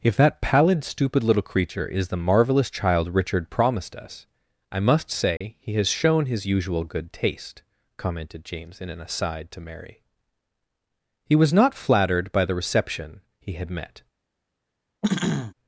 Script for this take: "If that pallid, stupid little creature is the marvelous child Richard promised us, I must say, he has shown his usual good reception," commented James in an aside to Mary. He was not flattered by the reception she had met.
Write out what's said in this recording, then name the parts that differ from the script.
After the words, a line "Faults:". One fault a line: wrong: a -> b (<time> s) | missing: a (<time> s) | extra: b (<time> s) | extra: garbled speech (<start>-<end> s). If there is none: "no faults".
"If that pallid, stupid little creature is the marvelous child Richard promised us, I must say, he has shown his usual good taste," commented James in an aside to Mary. He was not flattered by the reception he had met.
Faults:
wrong: reception -> taste (7.1 s)
wrong: she -> he (13.4 s)